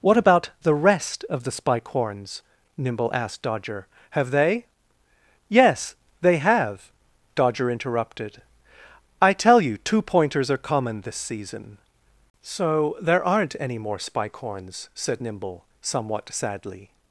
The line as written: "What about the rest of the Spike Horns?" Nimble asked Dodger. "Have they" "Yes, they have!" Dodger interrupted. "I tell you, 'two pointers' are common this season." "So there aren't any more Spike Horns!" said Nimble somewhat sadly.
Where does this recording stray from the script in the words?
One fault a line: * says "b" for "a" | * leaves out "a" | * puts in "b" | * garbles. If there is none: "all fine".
all fine